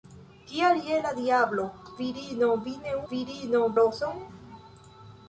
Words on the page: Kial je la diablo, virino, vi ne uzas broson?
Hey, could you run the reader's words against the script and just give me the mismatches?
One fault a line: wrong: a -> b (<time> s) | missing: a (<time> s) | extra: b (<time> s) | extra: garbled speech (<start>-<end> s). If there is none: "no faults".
wrong: uzas -> virino (3.1 s)